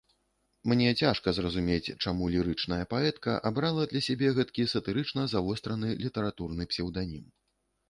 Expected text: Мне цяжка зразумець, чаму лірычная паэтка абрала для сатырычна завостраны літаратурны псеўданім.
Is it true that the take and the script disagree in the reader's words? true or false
true